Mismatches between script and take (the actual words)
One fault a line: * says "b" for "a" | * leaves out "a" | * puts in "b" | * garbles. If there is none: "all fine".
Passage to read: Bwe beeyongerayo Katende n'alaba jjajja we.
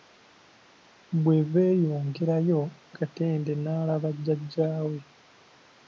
all fine